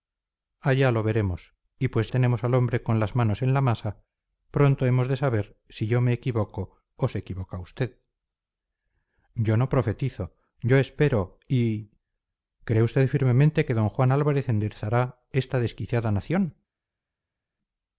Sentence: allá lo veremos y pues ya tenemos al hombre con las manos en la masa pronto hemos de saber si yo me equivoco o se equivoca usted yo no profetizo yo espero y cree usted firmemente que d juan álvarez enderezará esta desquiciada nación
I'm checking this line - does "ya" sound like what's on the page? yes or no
no